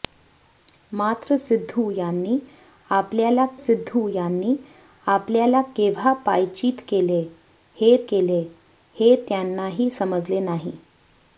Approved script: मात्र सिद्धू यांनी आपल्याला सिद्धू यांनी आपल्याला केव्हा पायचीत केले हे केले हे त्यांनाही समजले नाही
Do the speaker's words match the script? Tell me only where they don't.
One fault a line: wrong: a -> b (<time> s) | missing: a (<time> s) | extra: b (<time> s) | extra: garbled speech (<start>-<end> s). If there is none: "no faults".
no faults